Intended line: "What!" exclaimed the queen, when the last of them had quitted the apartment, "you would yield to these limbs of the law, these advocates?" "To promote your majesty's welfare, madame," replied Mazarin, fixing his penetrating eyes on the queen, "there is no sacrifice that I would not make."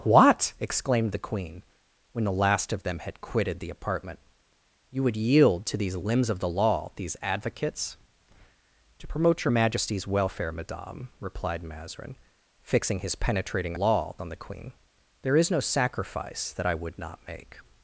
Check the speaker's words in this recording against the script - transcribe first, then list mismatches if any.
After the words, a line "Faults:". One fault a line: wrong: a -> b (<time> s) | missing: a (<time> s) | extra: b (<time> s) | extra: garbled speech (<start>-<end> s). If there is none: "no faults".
"What!" exclaimed the queen, when the last of them had quitted the apartment, "you would yield to these limbs of the law, these advocates?" "To promote your majesty's welfare, madame," replied Mazarin, fixing his penetrating law on the queen, "there is no sacrifice that I would not make."
Faults:
wrong: eyes -> law (13.7 s)